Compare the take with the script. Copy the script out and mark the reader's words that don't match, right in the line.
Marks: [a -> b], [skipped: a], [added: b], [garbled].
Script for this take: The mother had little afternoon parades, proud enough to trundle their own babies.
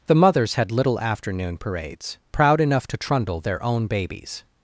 The [mother -> mothers] had little afternoon parades, proud enough to trundle their own babies.